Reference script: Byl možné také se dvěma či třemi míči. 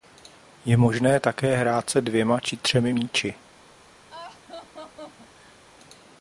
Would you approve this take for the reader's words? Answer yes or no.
no